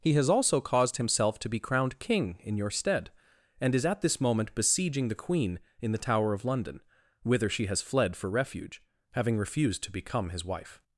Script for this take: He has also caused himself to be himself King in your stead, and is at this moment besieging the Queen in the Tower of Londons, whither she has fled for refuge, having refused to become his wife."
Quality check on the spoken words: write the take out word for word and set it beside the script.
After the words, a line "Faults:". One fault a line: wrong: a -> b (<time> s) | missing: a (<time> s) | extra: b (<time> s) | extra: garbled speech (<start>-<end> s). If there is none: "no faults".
He has also caused himself to be crowned King in your stead, and is at this moment besieging the Queen in the Tower of London, whither she has fled for refuge, having refused to become his wife."
Faults:
wrong: himself -> crowned (1.6 s)
wrong: Londons -> London (6.4 s)